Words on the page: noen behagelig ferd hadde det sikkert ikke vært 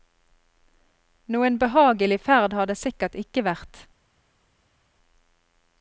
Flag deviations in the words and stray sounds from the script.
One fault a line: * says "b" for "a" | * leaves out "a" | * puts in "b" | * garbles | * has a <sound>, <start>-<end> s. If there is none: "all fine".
* says "har" for "hadde"